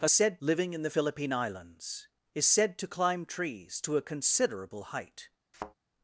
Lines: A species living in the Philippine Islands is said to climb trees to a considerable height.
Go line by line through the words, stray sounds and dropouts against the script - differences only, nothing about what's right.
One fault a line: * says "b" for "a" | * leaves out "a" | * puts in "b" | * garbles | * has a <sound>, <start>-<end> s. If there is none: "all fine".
* says "said" for "species"
* has a thud, 5.5-5.7 s